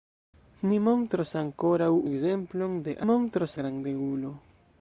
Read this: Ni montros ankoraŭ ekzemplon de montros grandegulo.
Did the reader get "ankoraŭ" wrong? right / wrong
right